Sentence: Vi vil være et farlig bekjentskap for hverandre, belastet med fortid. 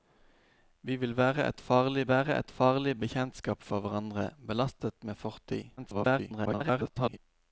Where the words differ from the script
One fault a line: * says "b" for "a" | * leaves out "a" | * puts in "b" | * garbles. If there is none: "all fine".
* puts in "være et farlig"
* garbles